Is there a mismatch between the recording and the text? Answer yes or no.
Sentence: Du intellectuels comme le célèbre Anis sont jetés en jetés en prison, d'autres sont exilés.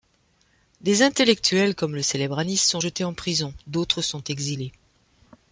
yes